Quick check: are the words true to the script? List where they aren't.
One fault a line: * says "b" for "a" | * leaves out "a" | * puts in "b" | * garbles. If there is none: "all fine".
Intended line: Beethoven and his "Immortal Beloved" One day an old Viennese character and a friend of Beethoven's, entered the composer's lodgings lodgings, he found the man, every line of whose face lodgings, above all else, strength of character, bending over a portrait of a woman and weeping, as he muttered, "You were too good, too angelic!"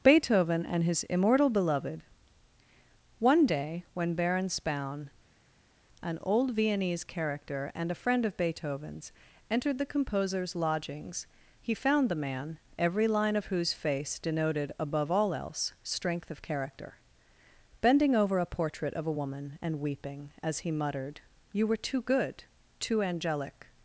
* puts in "when Baron Spaun"
* leaves out "lodgings"
* says "denoted" for "lodgings"